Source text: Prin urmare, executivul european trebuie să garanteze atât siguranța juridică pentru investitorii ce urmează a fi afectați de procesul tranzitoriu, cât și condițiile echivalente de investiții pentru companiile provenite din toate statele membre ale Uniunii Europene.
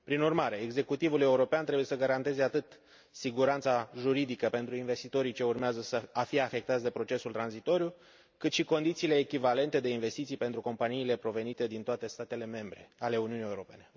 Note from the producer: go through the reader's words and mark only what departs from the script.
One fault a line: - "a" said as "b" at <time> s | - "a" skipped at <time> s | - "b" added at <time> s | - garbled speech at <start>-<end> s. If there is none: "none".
none